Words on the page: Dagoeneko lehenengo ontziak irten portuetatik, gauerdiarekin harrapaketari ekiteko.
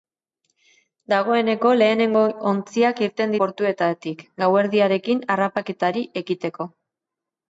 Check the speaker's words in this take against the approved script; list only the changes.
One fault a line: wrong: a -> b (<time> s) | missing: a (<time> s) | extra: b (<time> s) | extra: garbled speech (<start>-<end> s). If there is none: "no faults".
no faults